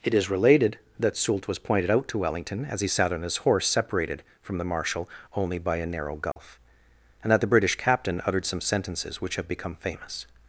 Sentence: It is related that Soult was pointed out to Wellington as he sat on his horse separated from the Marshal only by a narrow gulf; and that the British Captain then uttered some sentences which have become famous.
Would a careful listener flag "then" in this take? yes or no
yes